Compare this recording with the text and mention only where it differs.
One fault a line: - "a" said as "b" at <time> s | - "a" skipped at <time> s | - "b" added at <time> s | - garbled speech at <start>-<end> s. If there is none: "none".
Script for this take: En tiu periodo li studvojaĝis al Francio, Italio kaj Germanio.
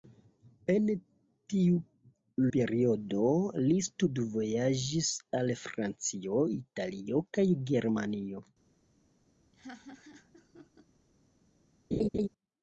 none